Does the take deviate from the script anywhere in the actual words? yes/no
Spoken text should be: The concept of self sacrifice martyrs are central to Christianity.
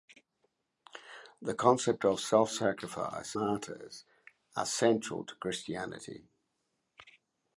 no